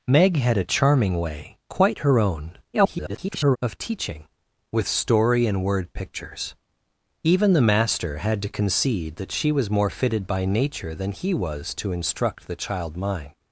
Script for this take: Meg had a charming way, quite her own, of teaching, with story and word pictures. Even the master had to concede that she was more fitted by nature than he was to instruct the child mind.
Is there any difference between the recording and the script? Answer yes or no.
yes